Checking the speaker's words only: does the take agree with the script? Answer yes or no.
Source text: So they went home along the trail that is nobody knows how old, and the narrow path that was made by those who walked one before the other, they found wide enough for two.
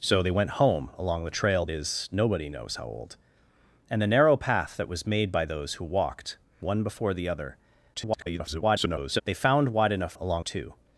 no